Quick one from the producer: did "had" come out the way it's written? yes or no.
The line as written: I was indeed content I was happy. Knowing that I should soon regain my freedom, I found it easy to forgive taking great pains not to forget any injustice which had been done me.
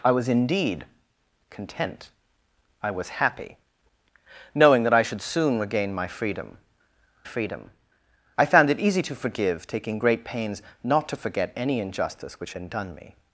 no